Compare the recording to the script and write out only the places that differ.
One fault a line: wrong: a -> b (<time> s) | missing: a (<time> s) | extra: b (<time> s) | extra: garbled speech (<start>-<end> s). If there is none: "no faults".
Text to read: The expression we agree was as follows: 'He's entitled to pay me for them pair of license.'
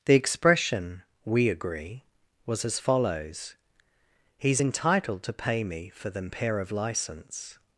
no faults